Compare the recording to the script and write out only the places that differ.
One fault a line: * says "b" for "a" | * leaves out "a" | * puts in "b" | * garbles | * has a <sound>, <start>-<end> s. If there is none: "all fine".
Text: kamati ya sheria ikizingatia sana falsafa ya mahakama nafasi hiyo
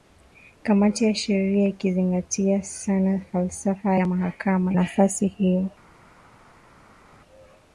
all fine